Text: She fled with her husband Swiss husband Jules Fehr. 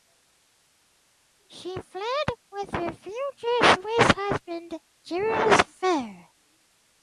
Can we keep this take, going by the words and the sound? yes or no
no